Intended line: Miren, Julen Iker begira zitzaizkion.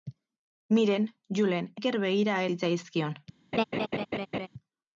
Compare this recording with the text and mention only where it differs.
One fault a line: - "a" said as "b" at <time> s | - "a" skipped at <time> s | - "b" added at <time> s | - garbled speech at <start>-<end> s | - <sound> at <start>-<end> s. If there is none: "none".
- laugh at 3.5-4.5 s